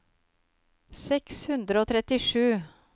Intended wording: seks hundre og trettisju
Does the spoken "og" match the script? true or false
true